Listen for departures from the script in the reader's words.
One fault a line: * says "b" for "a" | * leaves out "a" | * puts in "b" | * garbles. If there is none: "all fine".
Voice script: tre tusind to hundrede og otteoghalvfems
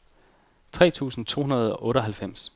all fine